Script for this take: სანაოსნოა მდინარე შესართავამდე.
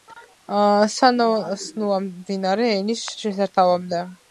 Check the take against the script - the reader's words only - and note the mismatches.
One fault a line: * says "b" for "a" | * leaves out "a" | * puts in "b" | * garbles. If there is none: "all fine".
* puts in "ენის"